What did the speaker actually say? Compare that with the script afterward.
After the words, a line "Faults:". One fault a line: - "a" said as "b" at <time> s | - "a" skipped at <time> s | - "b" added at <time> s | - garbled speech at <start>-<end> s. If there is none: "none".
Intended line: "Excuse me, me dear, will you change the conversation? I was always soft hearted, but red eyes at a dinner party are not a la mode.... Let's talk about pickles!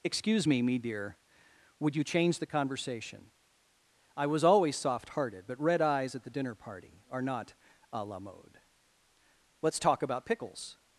"Excuse me, me dear, would you change the conversation? I was always soft hearted, but red eyes at the dinner party are not a la mode.... Let's talk about pickles!
Faults:
- "will" said as "would" at 1.8 s
- "a" said as "the" at 6.2 s